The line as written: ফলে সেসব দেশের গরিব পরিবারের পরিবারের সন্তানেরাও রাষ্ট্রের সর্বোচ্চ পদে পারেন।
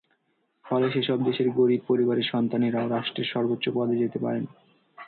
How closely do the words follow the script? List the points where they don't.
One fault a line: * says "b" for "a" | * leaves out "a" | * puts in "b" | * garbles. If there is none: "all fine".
* leaves out "পরিবারের"
* puts in "যেতে"